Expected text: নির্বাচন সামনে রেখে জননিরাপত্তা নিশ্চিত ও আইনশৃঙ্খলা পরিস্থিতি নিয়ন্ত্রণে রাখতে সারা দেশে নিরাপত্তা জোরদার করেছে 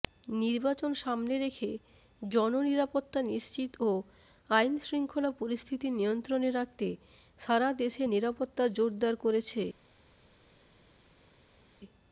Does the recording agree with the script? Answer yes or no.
yes